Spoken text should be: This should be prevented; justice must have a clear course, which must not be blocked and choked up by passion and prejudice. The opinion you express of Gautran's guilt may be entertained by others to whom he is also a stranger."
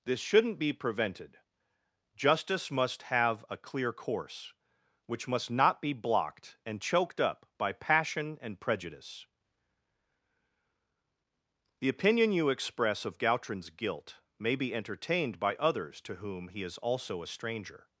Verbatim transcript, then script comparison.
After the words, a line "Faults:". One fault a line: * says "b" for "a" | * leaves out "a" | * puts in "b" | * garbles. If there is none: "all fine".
This shouldn't be prevented; justice must have a clear course, which must not be blocked and choked up by passion and prejudice. The opinion you express of Gautran's guilt may be entertained by others to whom he is also a stranger."
Faults:
* says "shouldn't" for "should"